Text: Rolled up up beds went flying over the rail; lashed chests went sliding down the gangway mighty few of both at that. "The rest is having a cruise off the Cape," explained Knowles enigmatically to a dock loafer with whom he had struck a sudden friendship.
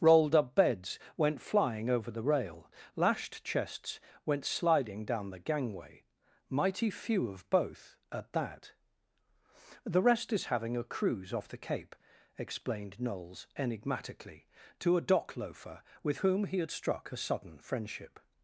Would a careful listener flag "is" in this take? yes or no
no